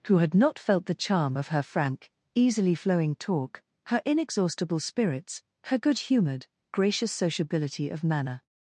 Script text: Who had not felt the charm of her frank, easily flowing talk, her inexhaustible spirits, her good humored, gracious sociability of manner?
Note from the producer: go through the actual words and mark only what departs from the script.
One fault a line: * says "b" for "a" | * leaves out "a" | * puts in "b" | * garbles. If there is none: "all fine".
all fine